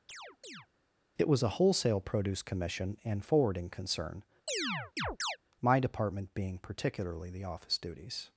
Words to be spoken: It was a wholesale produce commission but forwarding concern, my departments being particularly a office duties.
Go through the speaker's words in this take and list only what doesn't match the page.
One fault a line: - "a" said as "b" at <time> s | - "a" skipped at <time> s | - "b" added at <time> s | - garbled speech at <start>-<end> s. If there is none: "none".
- "but" said as "and" at 3.0 s
- "departments" said as "department" at 5.8 s
- "a" said as "the" at 7.3 s